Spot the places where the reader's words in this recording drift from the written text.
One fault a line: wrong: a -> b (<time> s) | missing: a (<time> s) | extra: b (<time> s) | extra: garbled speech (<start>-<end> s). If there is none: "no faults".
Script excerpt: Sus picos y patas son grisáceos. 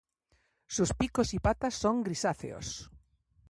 no faults